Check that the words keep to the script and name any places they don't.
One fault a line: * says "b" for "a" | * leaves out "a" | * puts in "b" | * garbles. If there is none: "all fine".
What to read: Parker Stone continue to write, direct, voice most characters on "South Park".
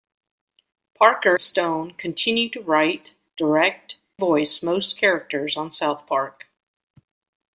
all fine